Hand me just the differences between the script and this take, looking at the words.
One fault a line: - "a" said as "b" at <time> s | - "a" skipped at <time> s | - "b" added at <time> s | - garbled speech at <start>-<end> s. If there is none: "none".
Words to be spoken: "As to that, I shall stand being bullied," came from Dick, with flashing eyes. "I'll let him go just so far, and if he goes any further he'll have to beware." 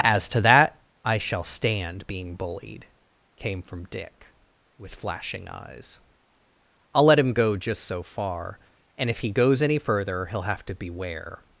none